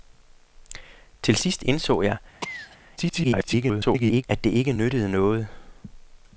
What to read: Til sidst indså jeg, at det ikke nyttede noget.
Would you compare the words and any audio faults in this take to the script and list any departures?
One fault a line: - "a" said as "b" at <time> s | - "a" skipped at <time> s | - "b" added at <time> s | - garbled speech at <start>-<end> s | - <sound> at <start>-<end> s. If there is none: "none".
- cough at 2.4-2.8 s
- garbled speech at 3.0-4.2 s